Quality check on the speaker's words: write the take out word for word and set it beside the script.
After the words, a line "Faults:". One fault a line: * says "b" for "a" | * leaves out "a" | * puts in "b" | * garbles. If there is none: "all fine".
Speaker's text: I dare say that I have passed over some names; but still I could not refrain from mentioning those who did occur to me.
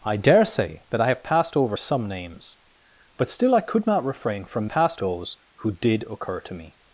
I dare say that I have passed over some names; but still I could not refrain from passed those who did occur to me.
Faults:
* says "passed" for "mentioning"